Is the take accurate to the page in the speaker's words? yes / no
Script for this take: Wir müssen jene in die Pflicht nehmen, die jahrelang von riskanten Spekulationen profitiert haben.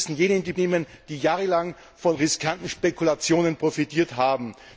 no